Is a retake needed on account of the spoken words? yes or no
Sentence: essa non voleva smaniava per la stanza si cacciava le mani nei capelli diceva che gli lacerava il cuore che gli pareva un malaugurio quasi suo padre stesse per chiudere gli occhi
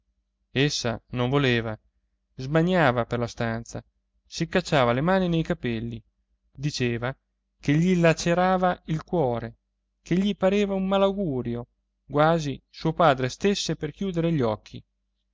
no